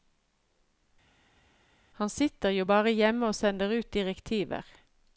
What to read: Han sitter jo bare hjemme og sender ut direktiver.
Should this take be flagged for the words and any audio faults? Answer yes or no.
no